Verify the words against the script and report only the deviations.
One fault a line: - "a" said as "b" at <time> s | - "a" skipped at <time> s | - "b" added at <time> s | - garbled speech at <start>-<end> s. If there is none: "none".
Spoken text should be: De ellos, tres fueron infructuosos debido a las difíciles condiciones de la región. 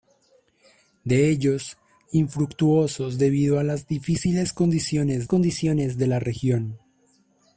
- "tres fueron" skipped at 1.8 s
- "condiciones" added at 5.2 s